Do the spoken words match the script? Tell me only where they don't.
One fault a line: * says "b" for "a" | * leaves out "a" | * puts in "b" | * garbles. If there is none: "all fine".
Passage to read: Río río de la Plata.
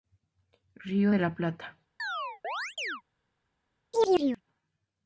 * leaves out "río"